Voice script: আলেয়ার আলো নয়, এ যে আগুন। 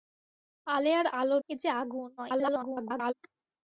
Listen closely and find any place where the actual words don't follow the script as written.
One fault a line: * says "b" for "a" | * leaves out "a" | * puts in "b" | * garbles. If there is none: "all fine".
* leaves out "নয়"
* garbles